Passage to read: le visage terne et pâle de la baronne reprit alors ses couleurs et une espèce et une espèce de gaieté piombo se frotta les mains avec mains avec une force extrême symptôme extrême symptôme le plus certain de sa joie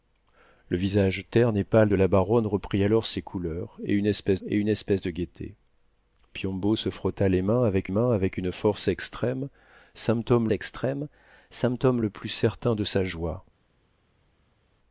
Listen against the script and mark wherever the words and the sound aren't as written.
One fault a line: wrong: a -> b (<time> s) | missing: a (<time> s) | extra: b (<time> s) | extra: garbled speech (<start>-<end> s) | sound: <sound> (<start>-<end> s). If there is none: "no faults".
no faults